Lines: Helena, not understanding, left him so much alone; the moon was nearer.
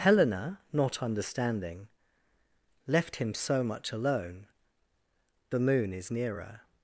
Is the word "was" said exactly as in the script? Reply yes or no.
no